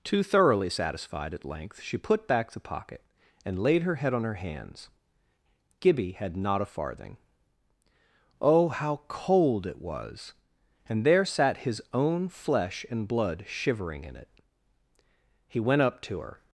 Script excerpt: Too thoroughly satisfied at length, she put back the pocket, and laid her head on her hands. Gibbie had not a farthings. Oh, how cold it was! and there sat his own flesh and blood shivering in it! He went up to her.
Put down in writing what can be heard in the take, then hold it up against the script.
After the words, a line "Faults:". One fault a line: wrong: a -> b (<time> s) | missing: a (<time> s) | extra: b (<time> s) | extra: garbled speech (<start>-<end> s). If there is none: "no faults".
Too thoroughly satisfied at length, she put back the pocket, and laid her head on her hands. Gibbie had not a farthing. Oh, how cold it was! and there sat his own flesh and blood shivering in it! He went up to her.
Faults:
wrong: farthings -> farthing (6.7 s)